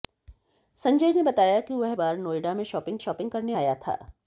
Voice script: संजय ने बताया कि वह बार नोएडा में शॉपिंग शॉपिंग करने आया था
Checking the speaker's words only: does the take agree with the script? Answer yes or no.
yes